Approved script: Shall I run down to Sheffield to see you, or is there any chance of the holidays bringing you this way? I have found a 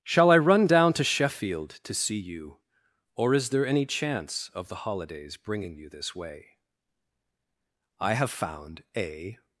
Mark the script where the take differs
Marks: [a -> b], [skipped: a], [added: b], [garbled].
Shall I run down to Sheffield to see you, or is there any chance of the holidays bringing you this way? I have found a